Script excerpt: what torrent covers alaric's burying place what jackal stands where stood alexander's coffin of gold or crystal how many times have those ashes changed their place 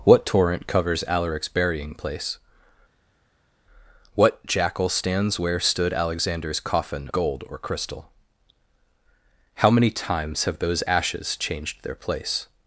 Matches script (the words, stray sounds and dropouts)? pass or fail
fail